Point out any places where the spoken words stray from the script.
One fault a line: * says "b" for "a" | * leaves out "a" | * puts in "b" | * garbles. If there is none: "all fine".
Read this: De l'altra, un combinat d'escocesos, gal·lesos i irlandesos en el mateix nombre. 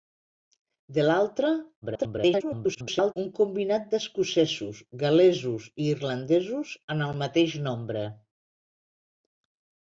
* garbles